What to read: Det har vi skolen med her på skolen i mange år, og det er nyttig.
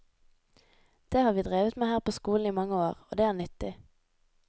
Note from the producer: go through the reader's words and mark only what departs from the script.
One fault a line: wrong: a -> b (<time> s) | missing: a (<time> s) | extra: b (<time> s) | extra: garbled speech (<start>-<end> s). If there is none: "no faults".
wrong: skolen -> drevet (1.4 s)